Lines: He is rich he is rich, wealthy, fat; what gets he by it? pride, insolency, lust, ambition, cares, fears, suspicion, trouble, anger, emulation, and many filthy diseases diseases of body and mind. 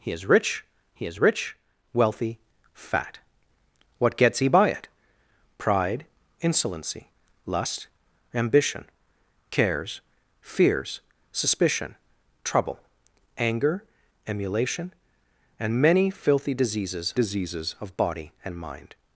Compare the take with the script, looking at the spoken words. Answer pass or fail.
pass